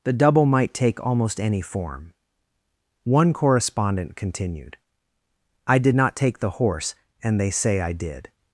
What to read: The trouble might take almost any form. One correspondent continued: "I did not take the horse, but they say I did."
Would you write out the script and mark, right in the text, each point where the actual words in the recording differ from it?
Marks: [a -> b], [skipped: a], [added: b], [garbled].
The [trouble -> double] might take almost any form. One correspondent continued: "I did not take the horse, [but -> and] they say I did."